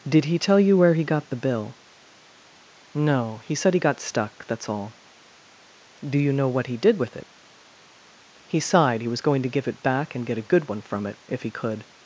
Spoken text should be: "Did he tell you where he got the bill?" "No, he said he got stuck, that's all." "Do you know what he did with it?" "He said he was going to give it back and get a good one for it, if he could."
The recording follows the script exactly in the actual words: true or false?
false